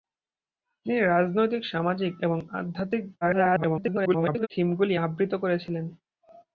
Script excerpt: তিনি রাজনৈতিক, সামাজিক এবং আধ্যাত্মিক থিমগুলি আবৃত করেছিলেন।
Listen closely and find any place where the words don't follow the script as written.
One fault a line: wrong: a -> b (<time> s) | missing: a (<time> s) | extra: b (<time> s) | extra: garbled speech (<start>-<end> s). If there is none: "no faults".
extra: garbled speech (3.2-4.5 s)